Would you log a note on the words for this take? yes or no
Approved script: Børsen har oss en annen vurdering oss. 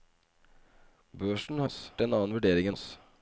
no